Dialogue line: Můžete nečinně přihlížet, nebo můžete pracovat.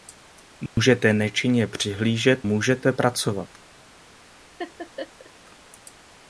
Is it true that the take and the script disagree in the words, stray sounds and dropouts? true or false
true